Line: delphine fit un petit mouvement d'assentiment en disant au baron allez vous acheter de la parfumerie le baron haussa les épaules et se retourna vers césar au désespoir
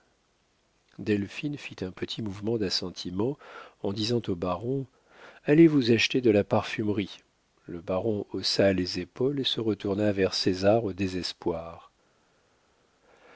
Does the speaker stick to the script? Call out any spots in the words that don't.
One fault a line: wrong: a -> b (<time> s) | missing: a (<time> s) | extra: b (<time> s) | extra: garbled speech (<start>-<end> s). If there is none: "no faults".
no faults